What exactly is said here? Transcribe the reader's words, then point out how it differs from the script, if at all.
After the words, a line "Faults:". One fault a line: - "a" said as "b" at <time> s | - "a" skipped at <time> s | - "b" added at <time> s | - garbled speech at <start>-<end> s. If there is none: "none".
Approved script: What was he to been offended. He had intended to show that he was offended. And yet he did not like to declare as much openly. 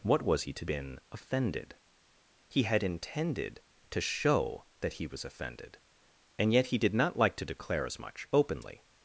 What was he to been offended. He had intended to show that he was offended. And yet he did not like to declare as much openly.
Faults:
none